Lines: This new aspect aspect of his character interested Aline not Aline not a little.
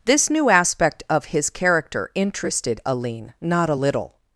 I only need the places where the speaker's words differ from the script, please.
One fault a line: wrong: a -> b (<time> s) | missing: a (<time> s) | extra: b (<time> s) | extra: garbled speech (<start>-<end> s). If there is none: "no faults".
missing: aspect (1.0 s)
missing: Aline not (3.7 s)